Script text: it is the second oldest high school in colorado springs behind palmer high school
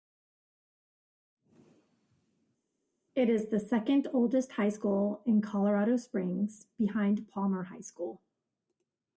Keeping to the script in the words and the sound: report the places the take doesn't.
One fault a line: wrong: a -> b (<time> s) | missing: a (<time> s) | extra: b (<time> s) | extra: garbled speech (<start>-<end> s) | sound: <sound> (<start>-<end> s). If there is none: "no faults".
no faults